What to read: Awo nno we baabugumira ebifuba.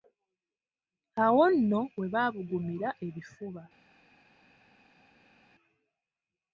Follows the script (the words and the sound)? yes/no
yes